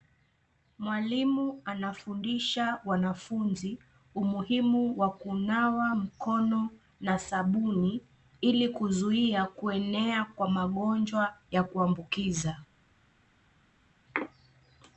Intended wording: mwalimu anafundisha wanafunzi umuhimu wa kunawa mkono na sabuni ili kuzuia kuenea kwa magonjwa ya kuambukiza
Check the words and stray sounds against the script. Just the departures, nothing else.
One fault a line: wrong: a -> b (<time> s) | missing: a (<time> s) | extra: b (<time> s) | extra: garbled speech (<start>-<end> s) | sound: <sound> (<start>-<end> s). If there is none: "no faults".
no faults